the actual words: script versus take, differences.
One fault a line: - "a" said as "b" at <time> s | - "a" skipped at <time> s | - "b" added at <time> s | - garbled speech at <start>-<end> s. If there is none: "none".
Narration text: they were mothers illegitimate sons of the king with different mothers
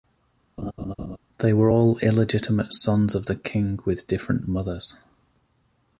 - "mothers" said as "all" at 1.7 s